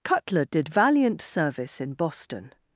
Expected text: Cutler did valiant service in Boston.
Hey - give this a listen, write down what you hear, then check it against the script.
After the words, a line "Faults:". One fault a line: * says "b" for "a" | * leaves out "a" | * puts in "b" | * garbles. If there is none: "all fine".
Cutler did valiant service in Boston.
Faults:
all fine